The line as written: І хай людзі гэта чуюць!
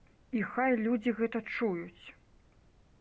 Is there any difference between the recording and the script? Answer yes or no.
no